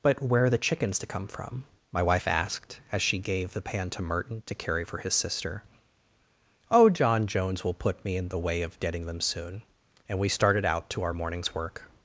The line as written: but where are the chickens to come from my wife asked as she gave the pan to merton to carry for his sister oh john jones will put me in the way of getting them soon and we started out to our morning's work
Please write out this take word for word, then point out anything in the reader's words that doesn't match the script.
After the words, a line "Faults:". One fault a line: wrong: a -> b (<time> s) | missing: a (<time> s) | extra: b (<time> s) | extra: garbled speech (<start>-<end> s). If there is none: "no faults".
but where are the chickens to come from my wife asked as she gave the pan to merton to carry for his sister oh john jones will put me in the way of getting them soon and we started out to our morning's work
Faults:
no faults